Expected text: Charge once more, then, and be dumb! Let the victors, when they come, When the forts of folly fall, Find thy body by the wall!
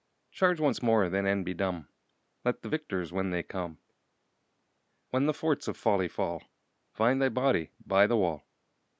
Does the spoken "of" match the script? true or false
true